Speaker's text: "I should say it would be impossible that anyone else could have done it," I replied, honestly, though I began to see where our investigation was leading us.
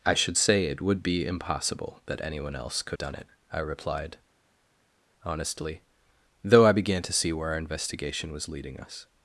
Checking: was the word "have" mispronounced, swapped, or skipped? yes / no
yes